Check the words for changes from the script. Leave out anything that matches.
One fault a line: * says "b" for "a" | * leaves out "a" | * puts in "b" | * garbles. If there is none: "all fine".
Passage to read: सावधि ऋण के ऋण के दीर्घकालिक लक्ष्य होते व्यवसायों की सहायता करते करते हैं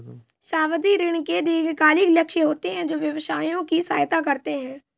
* leaves out "ऋण के"
* puts in "हैं जो"
* leaves out "करते"